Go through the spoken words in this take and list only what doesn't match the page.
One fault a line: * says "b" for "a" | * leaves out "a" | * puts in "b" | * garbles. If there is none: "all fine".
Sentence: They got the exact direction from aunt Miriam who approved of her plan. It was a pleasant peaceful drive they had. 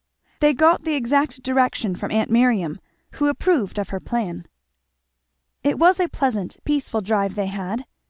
all fine